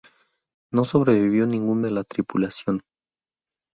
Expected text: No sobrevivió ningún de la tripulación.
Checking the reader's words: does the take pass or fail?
pass